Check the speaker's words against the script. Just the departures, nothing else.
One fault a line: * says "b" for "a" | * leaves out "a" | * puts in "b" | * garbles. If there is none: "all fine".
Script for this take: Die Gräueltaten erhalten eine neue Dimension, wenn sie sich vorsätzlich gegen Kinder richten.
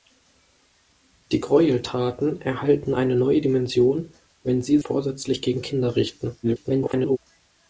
* leaves out "sich"
* garbles